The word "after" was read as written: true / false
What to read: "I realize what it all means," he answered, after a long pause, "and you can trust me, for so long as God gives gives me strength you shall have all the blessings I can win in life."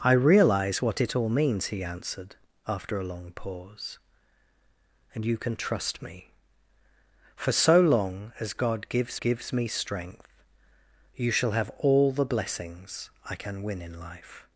true